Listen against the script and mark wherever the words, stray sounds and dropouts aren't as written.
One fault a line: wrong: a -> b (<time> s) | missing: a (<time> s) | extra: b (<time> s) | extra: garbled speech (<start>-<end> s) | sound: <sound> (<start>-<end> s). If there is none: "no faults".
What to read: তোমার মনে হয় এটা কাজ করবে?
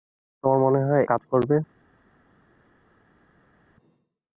missing: এটা (1.0 s)